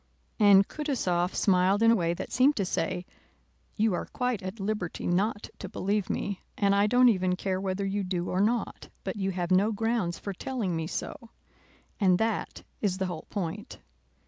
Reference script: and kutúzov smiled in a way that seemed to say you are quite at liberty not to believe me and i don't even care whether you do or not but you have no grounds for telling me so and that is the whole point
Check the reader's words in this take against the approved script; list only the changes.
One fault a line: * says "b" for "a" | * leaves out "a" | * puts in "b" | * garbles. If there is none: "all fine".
all fine